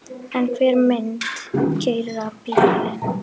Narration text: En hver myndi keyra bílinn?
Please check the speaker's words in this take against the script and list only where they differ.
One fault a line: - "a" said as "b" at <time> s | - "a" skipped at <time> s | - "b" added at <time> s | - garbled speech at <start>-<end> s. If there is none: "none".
none